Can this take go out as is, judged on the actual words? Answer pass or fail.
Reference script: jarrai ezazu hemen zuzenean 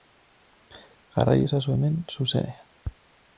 pass